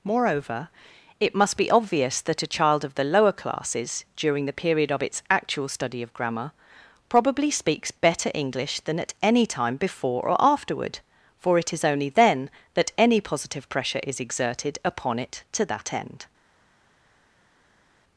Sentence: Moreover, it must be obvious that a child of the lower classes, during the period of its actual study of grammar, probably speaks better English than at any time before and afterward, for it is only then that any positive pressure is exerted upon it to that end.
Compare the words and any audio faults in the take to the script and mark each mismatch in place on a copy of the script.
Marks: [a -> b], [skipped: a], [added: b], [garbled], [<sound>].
Moreover, it must be obvious that a child of the lower classes, during the period of its actual study of grammar, probably speaks better English than at any time before [and -> or] afterward, for it is only then that any positive pressure is exerted upon it to that end.